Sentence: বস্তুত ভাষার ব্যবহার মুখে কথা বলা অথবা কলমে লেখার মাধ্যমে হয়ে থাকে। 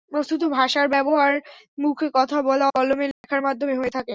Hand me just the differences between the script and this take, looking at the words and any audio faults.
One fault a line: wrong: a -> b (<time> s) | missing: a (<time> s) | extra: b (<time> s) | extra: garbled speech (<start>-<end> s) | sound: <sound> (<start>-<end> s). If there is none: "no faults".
missing: অথবা (2.6 s)
sound: dropout (3.1-3.2 s)